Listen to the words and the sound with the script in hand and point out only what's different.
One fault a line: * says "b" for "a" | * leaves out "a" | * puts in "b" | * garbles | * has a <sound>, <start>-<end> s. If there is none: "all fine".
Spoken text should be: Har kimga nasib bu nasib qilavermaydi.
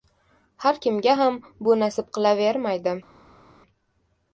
* says "ham" for "nasib"